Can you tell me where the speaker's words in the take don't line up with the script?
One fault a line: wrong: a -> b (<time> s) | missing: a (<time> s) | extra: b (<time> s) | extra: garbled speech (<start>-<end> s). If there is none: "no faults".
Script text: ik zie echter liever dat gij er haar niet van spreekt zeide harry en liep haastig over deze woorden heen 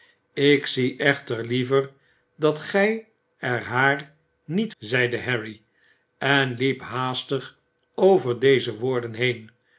missing: van spreekt (4.7 s)